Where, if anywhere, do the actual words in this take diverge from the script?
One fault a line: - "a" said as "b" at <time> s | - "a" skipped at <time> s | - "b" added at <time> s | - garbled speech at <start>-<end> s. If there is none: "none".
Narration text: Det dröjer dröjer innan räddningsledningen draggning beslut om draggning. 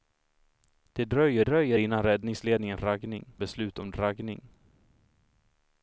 none